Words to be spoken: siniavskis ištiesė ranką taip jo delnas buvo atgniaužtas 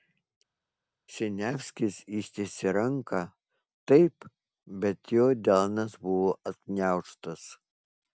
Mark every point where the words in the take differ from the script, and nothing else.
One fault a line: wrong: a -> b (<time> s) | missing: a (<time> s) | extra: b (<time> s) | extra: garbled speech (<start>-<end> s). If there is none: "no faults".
extra: bet (4.9 s)